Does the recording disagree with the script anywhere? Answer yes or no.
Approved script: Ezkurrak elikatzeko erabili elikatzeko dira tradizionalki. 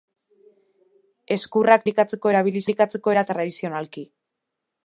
no